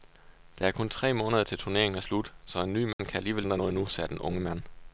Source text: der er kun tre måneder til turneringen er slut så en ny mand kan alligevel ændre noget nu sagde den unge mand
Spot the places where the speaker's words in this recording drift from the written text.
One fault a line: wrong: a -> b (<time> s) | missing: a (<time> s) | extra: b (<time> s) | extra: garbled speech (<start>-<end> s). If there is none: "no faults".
no faults